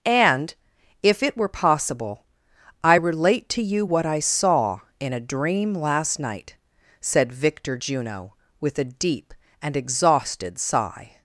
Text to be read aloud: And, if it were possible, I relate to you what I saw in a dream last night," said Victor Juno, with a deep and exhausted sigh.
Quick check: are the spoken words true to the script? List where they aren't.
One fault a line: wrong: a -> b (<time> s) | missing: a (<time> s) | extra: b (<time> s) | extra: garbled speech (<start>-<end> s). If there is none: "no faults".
no faults